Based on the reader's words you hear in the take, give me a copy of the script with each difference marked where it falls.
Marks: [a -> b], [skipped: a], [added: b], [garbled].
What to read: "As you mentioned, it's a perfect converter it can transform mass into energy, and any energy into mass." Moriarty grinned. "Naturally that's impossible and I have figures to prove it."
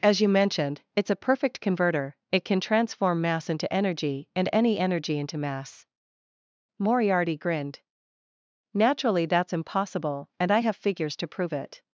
"As you mentioned, it's a perfect converter it can transform mass into energy, and any energy into mass." Moriarty grinned. "Naturally that's impossible and I have figures to prove it."